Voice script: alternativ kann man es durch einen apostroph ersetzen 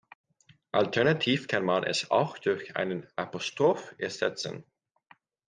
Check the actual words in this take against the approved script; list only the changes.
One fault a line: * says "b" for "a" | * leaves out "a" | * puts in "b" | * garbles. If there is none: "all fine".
* puts in "auch"